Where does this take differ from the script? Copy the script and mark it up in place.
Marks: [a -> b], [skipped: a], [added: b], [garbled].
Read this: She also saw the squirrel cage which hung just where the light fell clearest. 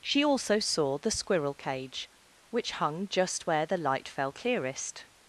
She also saw the squirrel cage which hung just where the light fell clearest.